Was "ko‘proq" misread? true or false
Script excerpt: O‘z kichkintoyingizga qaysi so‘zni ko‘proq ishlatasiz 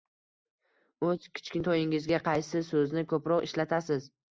false